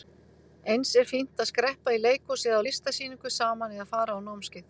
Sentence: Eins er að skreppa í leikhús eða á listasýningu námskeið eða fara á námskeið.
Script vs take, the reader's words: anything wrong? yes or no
yes